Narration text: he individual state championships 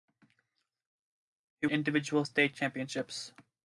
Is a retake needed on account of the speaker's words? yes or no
no